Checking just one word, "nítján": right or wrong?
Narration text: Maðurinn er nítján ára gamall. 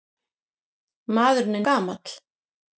wrong